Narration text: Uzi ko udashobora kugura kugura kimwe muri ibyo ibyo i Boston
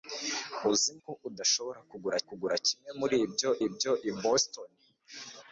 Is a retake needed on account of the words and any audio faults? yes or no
no